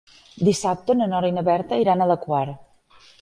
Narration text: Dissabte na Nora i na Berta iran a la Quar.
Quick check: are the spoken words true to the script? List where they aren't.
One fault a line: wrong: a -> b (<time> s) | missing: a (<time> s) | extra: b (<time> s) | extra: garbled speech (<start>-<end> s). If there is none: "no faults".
no faults